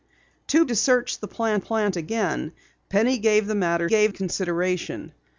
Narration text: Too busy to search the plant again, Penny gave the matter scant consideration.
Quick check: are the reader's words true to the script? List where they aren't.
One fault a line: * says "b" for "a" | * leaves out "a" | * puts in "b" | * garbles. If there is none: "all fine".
* leaves out "busy"
* puts in "plant"
* says "gave" for "scant"